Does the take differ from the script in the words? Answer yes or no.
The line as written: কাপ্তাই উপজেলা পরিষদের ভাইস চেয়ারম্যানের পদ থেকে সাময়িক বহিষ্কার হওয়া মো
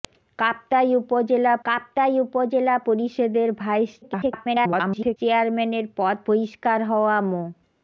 yes